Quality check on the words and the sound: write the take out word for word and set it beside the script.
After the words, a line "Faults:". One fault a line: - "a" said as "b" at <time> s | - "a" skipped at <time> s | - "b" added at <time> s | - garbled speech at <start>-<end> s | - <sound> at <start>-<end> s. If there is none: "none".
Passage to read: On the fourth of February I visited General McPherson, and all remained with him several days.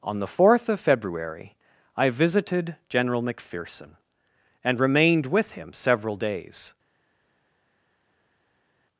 On the fourth of February I visited General McPherson, and remained with him several days.
Faults:
- "all" skipped at 4.8 s